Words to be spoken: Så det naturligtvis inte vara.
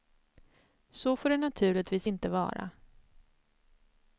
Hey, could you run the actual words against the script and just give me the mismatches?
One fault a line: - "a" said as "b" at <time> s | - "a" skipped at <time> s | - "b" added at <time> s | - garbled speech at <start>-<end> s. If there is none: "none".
- "får" added at 1.1 s